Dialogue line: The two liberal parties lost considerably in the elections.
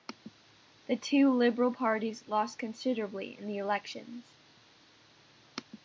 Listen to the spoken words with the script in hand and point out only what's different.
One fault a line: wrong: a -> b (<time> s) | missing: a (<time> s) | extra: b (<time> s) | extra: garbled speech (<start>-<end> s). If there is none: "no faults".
no faults